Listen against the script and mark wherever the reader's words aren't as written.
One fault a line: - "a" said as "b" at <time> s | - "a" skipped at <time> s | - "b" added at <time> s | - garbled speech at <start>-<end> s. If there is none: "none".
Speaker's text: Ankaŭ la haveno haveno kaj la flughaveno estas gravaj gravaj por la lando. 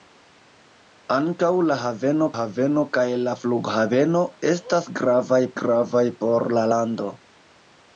none